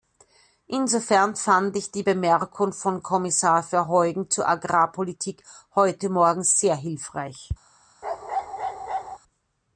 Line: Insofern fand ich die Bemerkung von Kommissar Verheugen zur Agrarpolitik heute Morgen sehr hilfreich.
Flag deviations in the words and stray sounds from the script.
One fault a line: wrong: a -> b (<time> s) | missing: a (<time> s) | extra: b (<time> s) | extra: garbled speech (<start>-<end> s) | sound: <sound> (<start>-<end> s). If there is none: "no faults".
sound: bark (8.0-9.2 s)